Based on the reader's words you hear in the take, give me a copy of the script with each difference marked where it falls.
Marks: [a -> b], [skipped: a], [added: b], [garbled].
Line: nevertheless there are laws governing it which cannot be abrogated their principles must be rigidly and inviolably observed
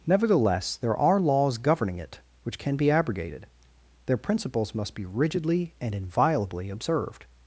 nevertheless there are laws governing it which [cannot -> can] be abrogated their principles must be rigidly and inviolably observed